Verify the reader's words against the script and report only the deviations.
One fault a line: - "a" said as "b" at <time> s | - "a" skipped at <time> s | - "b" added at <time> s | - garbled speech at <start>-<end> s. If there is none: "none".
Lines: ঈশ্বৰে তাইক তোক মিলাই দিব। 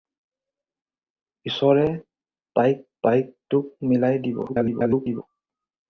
- "তাইক" added at 3.0 s
- garbled speech at 4.5-5.2 s